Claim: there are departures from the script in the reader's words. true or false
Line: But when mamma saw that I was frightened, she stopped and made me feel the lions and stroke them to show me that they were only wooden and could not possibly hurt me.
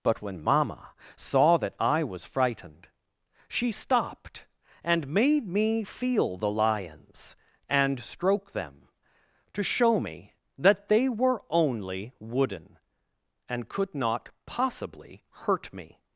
false